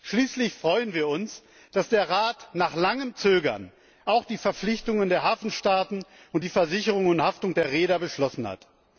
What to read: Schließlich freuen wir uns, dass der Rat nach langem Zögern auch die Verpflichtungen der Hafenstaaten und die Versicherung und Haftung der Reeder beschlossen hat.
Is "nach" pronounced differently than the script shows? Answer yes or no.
no